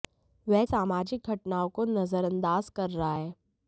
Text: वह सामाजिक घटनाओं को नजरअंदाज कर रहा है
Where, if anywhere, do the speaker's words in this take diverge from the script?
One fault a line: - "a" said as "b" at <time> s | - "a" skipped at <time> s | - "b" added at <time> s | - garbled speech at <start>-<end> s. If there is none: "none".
none